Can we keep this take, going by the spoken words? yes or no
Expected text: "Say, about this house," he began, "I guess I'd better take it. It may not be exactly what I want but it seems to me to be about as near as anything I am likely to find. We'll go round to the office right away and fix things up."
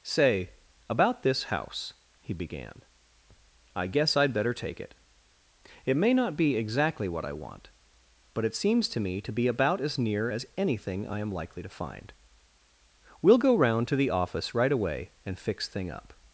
no